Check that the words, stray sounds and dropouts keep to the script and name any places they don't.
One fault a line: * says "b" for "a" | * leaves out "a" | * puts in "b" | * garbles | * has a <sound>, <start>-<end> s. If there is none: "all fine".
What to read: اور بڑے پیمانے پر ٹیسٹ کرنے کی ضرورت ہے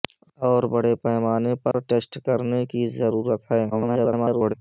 * has a dropout, 1.7-1.7 s
* garbles